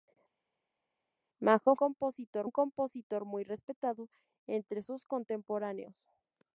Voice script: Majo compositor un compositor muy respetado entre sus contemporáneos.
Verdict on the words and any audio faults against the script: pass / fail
pass